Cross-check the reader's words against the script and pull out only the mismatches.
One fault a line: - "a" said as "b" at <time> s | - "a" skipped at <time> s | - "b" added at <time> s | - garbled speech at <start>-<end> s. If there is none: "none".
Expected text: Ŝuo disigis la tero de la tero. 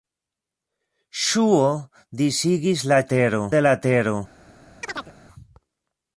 none